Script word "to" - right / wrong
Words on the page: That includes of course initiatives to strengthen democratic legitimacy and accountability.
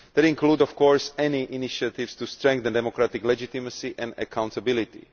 right